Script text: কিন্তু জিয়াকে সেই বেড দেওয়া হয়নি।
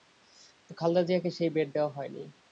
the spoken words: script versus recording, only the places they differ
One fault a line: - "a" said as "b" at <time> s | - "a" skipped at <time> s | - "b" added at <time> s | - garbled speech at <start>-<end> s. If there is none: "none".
- "খালেদা" added at 0.8 s